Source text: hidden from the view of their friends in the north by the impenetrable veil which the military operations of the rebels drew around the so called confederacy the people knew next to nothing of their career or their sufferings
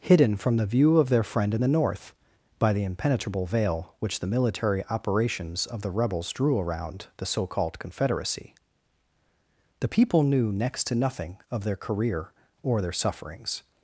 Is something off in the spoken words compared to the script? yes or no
yes